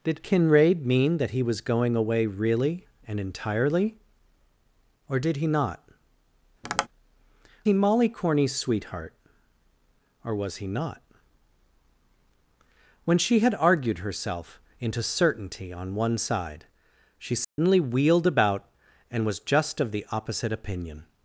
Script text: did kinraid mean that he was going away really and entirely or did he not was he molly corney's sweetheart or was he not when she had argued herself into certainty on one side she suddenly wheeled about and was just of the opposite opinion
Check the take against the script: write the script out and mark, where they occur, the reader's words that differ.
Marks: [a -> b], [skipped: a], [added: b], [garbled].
did kinraid mean that he was going away really and entirely or did he not [skipped: was] he molly corney's sweetheart or was he not when she had argued herself into certainty on one side she suddenly wheeled about and was just of the opposite opinion